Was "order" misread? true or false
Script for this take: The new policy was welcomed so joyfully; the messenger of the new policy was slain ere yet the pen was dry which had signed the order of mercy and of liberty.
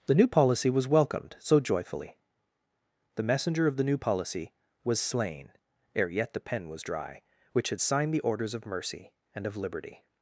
true